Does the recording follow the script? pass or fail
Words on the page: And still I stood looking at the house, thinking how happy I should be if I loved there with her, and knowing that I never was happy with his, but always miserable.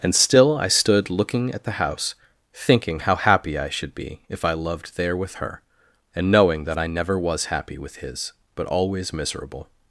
pass